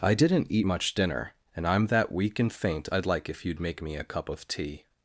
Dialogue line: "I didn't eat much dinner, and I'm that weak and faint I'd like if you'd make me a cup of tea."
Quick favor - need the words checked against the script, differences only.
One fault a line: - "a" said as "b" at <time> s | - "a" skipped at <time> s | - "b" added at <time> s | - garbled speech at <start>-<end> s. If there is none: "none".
none